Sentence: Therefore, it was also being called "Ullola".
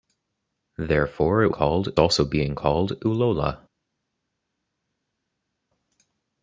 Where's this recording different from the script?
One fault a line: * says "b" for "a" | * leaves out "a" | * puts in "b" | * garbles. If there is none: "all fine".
* says "called" for "was"